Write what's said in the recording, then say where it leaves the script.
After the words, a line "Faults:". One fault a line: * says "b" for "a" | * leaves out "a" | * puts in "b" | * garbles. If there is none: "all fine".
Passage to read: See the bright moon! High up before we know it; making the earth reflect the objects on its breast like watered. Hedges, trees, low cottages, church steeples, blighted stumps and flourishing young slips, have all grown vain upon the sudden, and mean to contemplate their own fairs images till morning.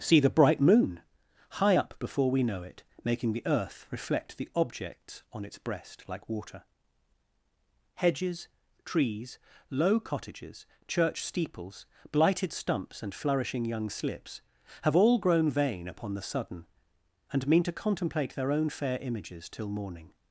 See the bright moon! High up before we know it; making the earth reflect the objects on its breast like water. Hedges, trees, low cottages, church steeples, blighted stumps and flourishing young slips, have all grown vain upon the sudden, and mean to contemplate their own fair images till morning.
Faults:
* says "water" for "watered"
* says "fair" for "fairs"